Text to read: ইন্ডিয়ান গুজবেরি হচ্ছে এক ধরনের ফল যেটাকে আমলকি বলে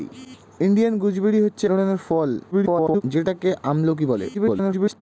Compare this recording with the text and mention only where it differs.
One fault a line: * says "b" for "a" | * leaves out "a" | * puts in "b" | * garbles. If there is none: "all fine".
* leaves out "এক"
* garbles
* garbles